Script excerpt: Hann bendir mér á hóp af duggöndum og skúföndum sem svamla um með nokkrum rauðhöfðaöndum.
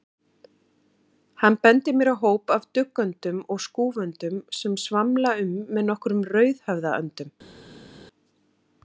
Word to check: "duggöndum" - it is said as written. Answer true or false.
true